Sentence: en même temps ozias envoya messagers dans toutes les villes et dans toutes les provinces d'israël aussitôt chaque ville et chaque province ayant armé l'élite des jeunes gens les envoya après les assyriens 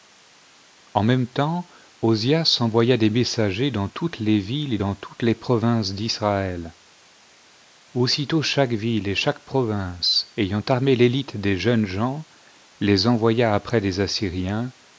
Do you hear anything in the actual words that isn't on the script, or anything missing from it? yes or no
yes